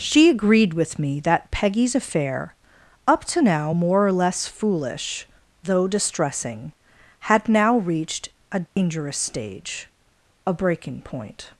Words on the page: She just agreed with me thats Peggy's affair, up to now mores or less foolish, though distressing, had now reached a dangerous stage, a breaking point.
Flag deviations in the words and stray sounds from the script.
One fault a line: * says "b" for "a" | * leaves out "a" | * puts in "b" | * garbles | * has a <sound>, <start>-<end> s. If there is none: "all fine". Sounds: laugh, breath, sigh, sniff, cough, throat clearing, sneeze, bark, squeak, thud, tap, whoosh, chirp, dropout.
* leaves out "just"
* says "that" for "thats"
* says "more" for "mores"
* has a dropout, 8.7-8.8 s